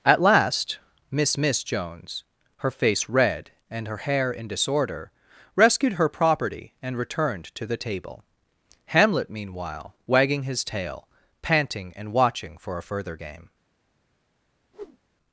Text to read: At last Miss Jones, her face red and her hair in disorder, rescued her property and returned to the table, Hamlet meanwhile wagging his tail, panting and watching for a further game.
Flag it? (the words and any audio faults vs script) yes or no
yes